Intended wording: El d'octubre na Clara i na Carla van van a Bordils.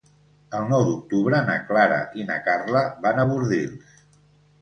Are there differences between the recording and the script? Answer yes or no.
yes